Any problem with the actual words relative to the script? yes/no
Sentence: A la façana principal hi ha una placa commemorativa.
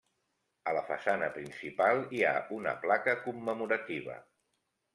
no